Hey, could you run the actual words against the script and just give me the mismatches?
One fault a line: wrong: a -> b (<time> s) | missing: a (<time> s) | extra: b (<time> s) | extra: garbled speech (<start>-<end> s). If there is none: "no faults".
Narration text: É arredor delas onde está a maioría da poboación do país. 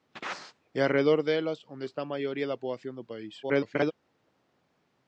extra: garbled speech (3.4-3.9 s)